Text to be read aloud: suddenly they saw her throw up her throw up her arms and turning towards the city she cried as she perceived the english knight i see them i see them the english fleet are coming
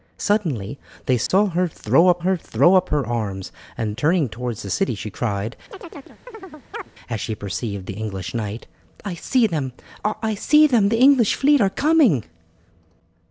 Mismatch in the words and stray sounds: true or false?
true